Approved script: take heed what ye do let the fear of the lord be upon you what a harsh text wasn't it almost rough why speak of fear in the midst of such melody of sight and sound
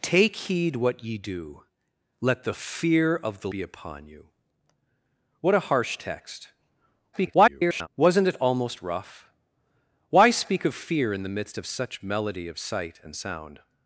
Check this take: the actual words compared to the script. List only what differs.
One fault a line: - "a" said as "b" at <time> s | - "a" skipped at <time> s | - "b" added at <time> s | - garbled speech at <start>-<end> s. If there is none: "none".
- "lord" skipped at 3.5 s
- garbled speech at 7.1-7.9 s